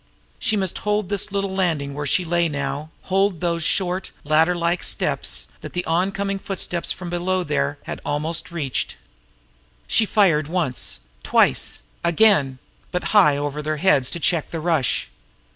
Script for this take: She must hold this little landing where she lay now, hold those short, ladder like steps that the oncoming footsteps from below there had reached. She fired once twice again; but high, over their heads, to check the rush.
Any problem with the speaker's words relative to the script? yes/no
yes